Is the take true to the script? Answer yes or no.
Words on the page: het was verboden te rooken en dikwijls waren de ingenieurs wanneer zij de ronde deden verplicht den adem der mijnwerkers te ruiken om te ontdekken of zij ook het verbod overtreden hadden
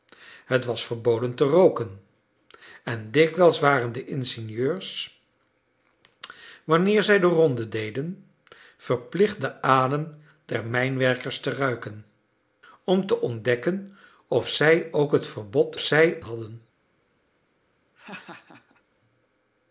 no